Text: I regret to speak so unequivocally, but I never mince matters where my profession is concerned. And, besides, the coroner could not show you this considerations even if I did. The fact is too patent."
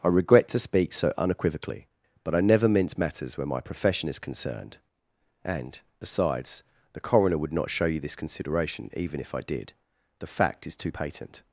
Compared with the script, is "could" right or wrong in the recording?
wrong